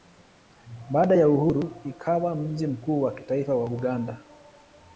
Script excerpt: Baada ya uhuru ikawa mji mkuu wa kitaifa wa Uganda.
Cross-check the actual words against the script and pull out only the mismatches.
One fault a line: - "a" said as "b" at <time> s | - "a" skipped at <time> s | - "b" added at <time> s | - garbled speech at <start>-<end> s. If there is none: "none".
none